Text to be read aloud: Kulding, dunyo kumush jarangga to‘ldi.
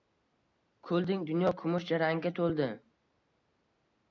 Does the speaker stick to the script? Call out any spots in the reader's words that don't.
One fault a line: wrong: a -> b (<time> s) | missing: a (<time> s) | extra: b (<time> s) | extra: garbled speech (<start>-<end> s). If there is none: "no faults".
no faults